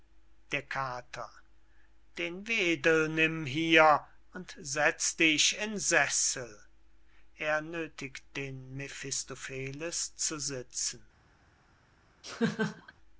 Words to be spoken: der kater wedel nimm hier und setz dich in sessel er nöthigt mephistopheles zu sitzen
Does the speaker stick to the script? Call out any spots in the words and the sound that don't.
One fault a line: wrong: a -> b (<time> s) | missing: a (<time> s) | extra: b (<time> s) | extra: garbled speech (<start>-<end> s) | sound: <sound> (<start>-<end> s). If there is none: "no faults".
extra: den (2.2 s)
extra: den (8.4 s)
sound: laugh (12.2-12.9 s)